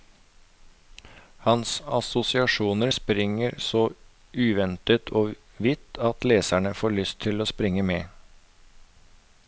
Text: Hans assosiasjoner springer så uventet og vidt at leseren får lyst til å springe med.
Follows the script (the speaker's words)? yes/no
yes